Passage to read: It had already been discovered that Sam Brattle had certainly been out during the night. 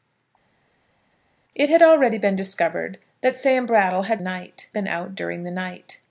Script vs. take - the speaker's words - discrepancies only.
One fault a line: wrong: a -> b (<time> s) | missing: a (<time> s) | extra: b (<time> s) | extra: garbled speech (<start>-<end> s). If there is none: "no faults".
wrong: certainly -> night (4.2 s)